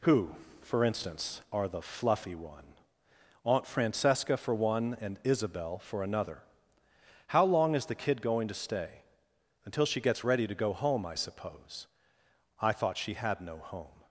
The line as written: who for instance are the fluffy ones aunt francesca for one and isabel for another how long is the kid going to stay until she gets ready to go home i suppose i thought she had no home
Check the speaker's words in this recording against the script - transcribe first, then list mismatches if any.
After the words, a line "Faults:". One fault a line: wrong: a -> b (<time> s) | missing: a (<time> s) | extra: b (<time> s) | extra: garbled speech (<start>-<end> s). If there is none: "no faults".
who for instance are the fluffy one aunt francesca for one and isabel for another how long is the kid going to stay until she gets ready to go home i suppose i thought she had no home
Faults:
wrong: ones -> one (2.3 s)